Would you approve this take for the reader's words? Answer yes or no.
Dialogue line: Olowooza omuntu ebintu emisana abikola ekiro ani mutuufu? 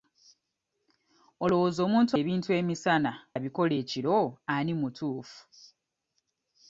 yes